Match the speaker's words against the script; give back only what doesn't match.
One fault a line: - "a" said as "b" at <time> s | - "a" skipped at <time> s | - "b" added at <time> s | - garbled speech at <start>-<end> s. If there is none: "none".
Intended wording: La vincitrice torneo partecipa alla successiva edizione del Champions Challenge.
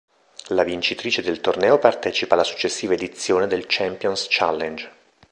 - "del" added at 1.2 s